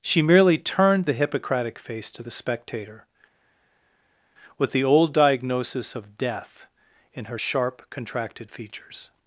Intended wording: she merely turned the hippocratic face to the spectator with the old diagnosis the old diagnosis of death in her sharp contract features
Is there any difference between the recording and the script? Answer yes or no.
yes